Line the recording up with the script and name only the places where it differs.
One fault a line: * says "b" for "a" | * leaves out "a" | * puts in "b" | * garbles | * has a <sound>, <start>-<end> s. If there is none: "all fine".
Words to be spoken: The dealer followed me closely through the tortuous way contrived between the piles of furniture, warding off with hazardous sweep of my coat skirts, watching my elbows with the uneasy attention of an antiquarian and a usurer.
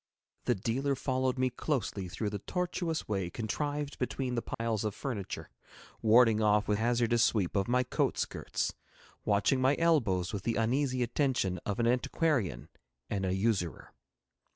* has a dropout, 4.5-4.6 s